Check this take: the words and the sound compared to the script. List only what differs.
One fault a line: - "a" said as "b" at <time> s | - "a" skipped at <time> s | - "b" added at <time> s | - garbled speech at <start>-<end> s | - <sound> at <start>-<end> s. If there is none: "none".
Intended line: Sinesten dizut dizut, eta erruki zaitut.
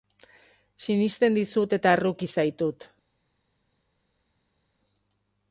- "dizut" skipped at 1.8 s